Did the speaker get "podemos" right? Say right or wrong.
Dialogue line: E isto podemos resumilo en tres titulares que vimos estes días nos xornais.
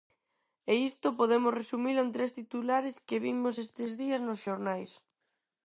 right